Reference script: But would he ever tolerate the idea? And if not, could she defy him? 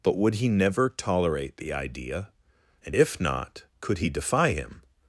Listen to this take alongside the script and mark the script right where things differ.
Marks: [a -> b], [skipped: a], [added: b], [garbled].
But would he [ever -> never] tolerate the idea? And if not, could [she -> he] defy him?